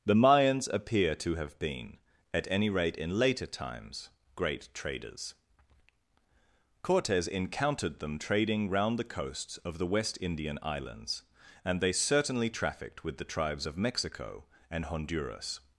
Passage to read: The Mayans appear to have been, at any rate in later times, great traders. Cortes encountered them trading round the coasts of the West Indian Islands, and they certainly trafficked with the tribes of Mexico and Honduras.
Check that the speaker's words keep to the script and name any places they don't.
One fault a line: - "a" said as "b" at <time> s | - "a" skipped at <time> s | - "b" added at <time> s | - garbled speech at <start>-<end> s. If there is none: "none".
none